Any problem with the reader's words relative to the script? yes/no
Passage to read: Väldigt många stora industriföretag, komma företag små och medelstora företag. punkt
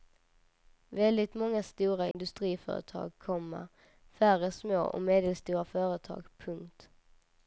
yes